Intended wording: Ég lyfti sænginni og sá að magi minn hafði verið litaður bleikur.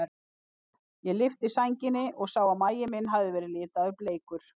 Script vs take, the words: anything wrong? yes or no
no